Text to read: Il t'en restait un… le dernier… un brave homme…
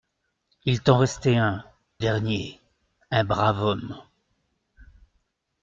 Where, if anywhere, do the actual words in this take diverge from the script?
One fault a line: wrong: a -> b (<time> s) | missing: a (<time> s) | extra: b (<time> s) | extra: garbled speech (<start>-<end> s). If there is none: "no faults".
missing: le (1.6 s)